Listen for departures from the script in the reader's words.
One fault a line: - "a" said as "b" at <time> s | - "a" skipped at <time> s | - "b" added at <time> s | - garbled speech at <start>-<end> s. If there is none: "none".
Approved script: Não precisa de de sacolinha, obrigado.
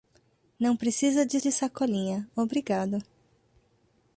none